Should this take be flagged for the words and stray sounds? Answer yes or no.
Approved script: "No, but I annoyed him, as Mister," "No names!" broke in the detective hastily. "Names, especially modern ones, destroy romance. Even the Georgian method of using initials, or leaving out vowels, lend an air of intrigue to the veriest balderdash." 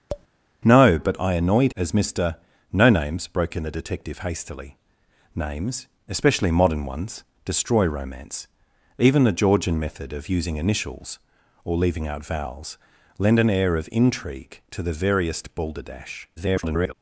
yes